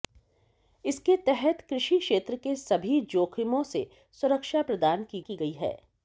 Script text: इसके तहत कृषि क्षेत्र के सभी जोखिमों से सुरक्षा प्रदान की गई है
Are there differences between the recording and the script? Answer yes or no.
yes